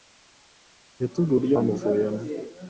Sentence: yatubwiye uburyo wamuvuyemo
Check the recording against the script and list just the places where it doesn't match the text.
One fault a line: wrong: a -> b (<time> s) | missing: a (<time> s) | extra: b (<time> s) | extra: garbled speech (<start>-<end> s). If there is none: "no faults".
no faults